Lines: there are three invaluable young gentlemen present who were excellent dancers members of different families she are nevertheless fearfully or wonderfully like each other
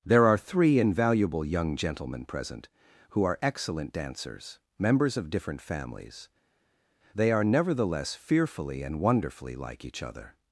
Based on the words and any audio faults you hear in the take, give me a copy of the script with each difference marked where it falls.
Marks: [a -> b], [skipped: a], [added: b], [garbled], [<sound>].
there are three invaluable young gentlemen present who [were -> are] excellent dancers members of different families [she -> they] are nevertheless fearfully [or -> and] wonderfully like each other